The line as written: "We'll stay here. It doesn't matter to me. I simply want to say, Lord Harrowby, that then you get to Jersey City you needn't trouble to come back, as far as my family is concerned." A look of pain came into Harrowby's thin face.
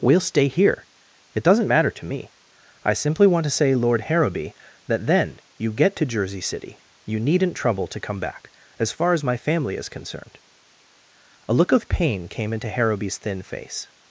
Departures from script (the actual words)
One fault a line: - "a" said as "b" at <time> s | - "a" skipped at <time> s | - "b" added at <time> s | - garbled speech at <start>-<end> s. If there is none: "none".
none